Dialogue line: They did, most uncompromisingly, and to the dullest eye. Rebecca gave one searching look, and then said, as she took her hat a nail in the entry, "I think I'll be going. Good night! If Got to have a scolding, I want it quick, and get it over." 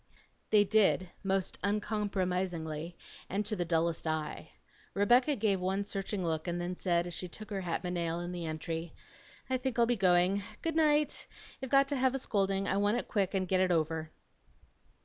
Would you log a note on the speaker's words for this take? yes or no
no